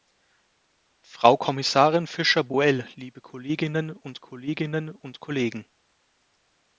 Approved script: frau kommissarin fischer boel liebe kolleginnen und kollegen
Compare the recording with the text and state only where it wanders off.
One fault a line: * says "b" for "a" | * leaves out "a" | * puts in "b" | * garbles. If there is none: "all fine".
* puts in "kolleginnen und"